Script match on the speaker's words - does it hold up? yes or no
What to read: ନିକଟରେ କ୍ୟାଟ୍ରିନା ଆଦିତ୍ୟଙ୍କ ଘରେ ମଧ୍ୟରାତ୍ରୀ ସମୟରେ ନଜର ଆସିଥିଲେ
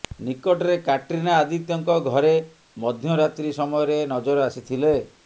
yes